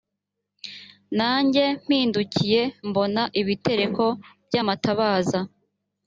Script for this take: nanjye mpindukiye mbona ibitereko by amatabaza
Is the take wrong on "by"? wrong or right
right